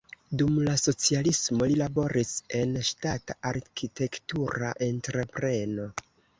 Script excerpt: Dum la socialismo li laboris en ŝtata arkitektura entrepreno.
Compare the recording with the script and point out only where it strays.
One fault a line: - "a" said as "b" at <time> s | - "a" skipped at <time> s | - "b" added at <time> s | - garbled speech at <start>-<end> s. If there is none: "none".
none